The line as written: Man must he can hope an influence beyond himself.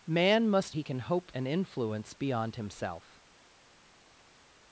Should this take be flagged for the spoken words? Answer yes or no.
no